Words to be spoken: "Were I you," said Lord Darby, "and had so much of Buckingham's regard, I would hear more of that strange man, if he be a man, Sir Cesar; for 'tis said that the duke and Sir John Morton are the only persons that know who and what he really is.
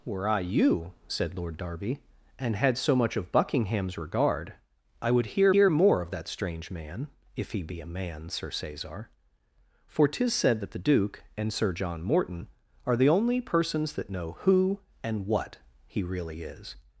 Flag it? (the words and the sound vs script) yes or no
yes